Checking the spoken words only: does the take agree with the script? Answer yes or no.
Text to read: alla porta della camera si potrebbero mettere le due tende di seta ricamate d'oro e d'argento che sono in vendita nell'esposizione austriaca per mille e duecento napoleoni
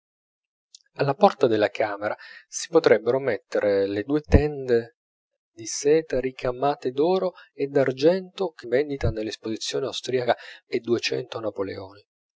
no